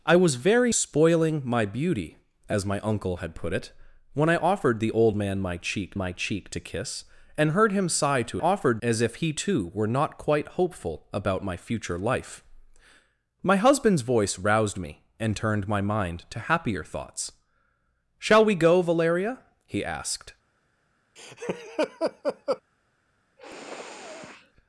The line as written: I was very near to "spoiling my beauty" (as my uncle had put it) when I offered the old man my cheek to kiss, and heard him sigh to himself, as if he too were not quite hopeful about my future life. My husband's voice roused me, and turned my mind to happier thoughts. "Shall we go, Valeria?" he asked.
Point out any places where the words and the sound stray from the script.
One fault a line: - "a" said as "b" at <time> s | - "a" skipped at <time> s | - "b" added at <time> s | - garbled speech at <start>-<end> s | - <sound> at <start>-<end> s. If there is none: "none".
- "near to" skipped at 0.7 s
- "my cheek" added at 5.9 s
- "himself" said as "offered" at 8.4 s
- laugh at 21.2-22.6 s
- sniff at 23.4-24.5 s